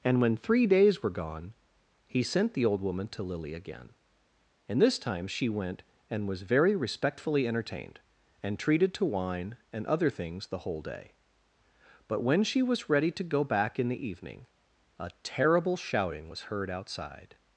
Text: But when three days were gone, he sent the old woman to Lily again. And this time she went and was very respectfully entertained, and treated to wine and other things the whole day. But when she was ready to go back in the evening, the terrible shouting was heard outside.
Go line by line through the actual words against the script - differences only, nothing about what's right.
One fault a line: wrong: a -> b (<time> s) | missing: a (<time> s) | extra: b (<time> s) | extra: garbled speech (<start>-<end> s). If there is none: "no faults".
wrong: But -> And (0.0 s)
wrong: the -> a (15.0 s)